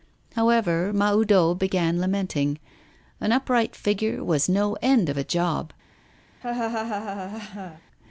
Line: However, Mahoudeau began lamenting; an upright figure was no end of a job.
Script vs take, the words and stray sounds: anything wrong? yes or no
yes